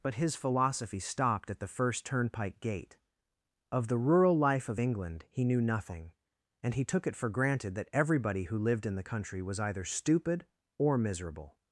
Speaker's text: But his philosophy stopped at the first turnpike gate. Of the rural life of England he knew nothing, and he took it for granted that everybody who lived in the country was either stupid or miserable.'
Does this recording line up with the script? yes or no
yes